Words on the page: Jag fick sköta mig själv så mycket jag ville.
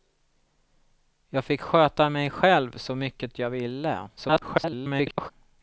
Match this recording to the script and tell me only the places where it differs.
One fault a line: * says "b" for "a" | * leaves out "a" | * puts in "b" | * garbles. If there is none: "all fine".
* garbles